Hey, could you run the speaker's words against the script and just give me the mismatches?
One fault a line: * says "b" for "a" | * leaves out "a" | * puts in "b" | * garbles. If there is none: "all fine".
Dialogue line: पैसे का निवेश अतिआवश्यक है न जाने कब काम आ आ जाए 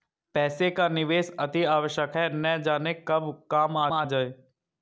all fine